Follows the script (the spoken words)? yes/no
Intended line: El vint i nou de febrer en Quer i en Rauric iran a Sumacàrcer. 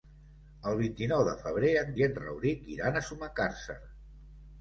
no